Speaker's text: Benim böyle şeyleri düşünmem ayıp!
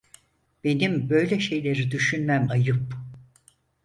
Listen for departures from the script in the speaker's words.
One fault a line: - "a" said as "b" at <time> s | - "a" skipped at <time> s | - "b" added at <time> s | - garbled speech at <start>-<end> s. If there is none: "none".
none